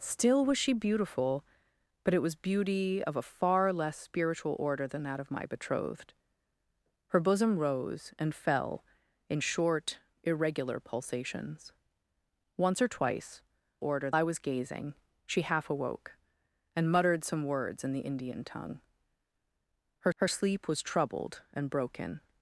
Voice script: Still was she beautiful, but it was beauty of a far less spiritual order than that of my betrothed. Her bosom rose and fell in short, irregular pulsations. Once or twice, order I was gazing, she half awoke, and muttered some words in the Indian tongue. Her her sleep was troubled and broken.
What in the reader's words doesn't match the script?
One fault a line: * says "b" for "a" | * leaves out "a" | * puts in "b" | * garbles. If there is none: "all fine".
all fine